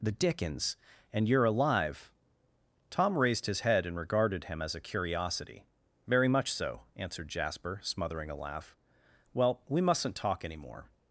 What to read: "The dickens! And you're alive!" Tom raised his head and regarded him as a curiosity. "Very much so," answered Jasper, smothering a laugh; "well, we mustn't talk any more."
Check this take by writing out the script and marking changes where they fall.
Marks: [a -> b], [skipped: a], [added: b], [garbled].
"The dickens! And you're alive!" Tom raised his head and regarded him as a curiosity. "Very much so," answered Jasper, smothering a laugh; "well, we mustn't talk any more."